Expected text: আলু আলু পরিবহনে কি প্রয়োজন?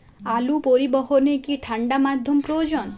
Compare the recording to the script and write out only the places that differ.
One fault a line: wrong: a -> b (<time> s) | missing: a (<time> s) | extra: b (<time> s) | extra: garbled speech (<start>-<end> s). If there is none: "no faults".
missing: আলু (0.6 s)
extra: ঠাণ্ডা মাধ্যম (1.6 s)